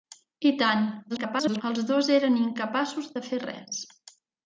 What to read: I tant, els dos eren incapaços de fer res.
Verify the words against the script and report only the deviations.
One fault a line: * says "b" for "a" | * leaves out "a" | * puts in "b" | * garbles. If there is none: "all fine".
* garbles